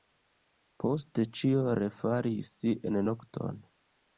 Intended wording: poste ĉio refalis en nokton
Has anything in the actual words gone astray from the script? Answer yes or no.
no